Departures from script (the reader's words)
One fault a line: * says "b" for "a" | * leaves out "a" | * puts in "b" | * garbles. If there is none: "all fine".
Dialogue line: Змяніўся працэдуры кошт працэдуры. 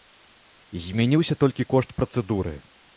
* says "толькі" for "працэдуры"